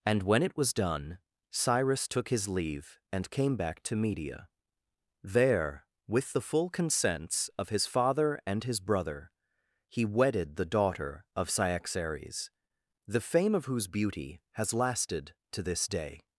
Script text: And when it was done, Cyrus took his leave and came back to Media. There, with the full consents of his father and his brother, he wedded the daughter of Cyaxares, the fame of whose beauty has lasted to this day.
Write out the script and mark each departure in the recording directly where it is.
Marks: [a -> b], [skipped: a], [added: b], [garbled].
And when it was done, Cyrus took his leave and came back to Media. There, with the full consents of his father and his brother, he wedded the daughter of Cyaxares, the fame of whose beauty has lasted to this day.